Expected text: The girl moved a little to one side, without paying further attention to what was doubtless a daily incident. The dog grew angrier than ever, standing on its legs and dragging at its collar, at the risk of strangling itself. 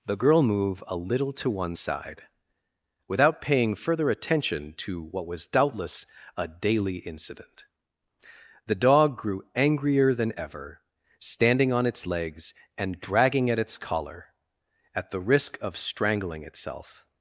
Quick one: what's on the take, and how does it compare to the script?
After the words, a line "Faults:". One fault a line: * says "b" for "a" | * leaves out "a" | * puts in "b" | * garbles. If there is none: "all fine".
The girl move a little to one side, without paying further attention to what was doubtless a daily incident. The dog grew angrier than ever, standing on its legs and dragging at its collar, at the risk of strangling itself.
Faults:
* says "move" for "moved"